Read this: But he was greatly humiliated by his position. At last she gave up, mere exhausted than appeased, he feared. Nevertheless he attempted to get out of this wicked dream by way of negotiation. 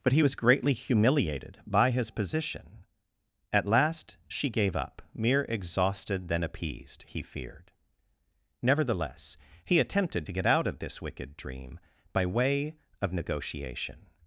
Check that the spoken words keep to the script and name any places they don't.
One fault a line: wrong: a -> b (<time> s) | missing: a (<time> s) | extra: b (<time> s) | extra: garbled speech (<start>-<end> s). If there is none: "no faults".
no faults